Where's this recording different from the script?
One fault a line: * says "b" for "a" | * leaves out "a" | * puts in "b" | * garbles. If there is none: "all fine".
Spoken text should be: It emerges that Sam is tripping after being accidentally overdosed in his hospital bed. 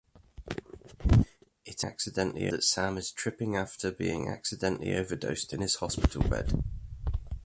* says "accidentally" for "emerges"